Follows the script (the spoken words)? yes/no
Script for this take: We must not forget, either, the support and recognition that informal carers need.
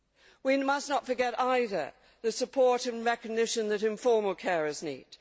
yes